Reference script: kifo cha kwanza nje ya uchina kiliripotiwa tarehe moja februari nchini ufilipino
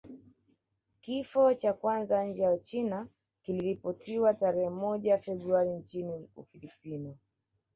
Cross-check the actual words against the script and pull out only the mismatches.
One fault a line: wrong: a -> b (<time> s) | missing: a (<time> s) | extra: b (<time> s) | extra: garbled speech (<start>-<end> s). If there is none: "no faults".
no faults